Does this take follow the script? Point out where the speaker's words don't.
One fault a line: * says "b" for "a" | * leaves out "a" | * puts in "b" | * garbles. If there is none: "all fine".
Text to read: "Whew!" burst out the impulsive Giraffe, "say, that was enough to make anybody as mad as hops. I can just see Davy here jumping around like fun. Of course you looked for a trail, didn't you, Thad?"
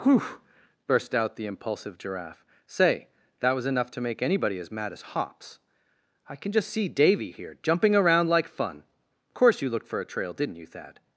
* leaves out "Of"